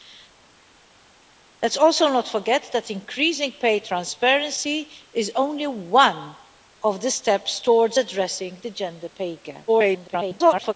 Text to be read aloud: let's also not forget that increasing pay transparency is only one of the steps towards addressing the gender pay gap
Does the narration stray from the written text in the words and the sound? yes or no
yes